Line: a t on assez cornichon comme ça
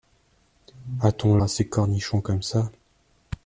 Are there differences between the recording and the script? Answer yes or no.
no